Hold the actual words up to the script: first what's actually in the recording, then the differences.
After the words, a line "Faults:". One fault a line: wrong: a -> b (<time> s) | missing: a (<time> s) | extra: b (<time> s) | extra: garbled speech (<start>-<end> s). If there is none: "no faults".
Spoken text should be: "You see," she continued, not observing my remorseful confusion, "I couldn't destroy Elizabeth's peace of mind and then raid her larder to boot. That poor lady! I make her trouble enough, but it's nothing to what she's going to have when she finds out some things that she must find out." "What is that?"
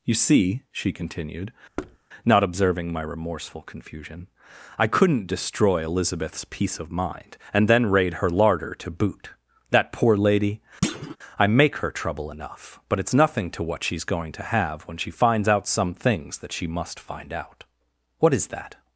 "You see," she continued, not observing my remorseful confusion, "I couldn't destroy Elizabeth's peace of mind and then raid her larder to boot. That poor lady! I make her trouble enough, but it's nothing to what she's going to have when she finds out some things that she must find out." "What is that?"
Faults:
no faults